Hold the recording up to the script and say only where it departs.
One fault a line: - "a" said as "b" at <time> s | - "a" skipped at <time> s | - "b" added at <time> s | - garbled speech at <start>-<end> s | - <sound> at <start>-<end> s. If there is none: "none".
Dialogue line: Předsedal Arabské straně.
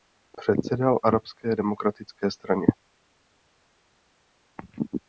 - "demokratické" added at 1.5 s